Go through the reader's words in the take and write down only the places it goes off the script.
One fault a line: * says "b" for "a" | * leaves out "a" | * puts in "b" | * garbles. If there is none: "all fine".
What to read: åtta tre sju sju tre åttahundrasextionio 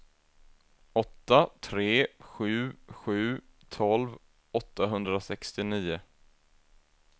* says "tolv" for "tre"